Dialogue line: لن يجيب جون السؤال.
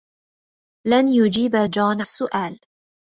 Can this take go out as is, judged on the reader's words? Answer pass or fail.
pass